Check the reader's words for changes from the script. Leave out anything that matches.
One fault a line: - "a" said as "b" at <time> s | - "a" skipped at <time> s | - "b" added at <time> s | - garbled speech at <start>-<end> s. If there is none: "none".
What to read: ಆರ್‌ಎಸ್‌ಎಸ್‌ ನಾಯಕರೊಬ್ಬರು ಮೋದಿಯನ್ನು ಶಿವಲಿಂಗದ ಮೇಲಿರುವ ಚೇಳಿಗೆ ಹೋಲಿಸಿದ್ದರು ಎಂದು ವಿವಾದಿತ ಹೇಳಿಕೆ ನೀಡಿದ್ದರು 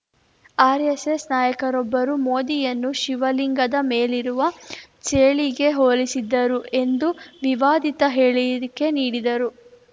none